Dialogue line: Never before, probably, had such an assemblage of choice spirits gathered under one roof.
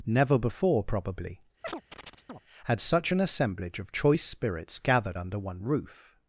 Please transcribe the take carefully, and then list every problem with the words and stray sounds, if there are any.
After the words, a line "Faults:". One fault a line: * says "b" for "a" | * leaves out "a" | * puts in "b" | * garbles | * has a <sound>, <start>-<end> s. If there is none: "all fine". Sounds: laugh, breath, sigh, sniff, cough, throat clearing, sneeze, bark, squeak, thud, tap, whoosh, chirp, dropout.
Never before, probably, had such an assemblage of choice spirits gathered under one roof.
Faults:
* has a chirp, 1.6-2.4 s